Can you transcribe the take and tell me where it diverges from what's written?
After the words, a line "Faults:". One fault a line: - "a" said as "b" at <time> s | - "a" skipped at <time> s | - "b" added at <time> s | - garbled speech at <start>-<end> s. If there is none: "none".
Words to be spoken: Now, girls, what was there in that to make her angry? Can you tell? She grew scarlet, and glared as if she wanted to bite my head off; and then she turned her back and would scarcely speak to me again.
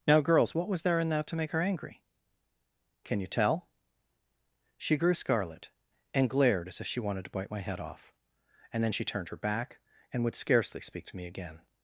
Now, girls, what was there in that to make her angry? Can you tell? She grew scarlet, and glared as if she wanted to bite my head off; and then she turned her back and would scarcely speak to me again.
Faults:
none